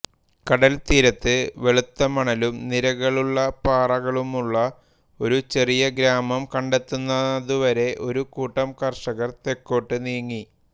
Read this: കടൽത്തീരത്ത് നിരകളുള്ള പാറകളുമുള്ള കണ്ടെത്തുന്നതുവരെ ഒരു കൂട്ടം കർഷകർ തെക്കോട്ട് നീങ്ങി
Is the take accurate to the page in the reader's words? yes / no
no